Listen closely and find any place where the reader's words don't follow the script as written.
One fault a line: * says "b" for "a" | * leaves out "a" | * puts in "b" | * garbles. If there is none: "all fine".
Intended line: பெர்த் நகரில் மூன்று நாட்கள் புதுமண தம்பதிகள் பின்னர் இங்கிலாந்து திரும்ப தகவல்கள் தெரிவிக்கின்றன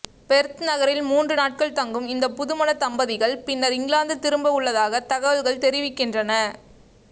* puts in "தங்கும் இந்த"
* puts in "உள்ளதாக"